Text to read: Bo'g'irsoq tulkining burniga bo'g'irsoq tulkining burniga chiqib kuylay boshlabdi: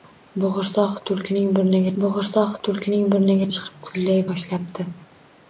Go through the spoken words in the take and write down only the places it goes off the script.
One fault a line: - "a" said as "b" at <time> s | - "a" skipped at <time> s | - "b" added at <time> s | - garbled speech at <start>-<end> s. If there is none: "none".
none